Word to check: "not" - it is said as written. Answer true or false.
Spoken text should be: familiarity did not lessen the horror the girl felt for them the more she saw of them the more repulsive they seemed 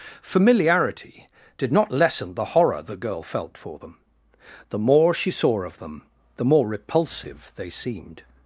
true